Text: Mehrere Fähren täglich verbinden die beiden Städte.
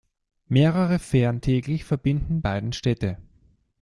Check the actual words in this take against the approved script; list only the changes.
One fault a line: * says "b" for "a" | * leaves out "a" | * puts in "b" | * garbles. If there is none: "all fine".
* leaves out "die"